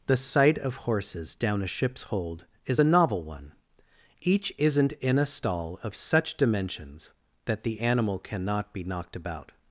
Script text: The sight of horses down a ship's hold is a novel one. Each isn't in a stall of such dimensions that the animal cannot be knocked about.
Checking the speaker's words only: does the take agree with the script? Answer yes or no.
yes